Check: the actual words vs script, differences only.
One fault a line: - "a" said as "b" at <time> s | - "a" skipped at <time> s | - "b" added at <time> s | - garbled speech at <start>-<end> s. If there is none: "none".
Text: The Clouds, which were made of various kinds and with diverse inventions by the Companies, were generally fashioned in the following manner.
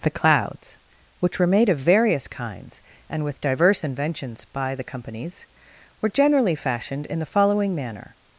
none